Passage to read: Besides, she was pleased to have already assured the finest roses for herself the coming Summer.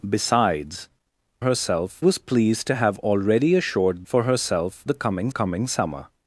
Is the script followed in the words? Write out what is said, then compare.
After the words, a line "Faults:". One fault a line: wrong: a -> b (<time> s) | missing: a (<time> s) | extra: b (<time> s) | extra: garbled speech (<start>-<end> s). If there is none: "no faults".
Besides, herself was pleased to have already assured for herself the coming coming Summer.
Faults:
wrong: she -> herself (1.4 s)
missing: the finest roses (4.0 s)
extra: coming (5.3 s)